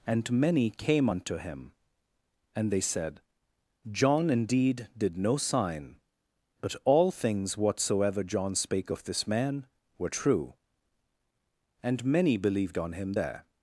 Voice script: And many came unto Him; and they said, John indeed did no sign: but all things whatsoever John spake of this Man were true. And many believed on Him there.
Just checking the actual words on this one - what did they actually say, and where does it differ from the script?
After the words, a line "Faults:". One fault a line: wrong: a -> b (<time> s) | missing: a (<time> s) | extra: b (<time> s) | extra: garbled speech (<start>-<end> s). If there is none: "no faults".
And many came unto Him; and they said, John indeed did no sign: but all things whatsoever John spake of this Man were true. And many believed on Him there.
Faults:
no faults